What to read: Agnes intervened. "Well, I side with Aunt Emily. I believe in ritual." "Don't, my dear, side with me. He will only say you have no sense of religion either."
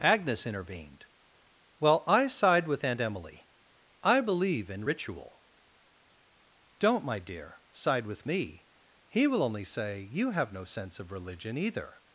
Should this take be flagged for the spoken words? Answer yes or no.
no